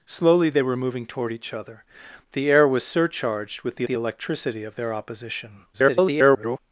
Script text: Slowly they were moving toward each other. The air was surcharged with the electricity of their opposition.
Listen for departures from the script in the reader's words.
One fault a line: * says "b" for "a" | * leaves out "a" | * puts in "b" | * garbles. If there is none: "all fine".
* puts in "the"
* garbles